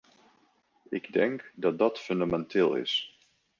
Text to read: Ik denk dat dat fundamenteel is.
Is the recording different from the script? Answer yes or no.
no